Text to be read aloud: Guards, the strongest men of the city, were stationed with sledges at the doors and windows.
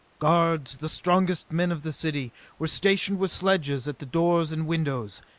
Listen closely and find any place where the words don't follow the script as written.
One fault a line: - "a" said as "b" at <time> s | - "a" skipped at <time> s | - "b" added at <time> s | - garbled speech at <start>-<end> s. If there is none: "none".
none